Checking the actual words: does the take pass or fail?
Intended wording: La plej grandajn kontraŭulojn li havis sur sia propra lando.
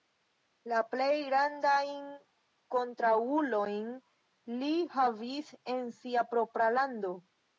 fail